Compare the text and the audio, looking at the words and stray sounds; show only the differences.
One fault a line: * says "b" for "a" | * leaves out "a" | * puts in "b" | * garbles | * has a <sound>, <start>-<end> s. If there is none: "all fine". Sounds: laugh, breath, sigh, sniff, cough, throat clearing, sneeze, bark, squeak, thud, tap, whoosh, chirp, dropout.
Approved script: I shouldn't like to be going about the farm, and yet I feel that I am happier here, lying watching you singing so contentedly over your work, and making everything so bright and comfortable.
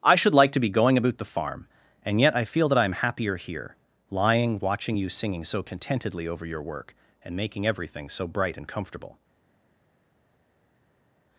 * says "should" for "shouldn't"